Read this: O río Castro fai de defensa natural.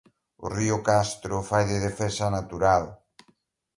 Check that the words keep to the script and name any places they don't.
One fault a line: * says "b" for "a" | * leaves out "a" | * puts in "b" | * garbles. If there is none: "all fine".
all fine